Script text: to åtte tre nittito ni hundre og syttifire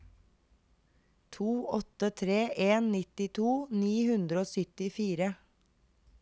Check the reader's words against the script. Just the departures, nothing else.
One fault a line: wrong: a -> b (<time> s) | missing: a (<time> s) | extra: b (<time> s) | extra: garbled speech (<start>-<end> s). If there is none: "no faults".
extra: en (2.7 s)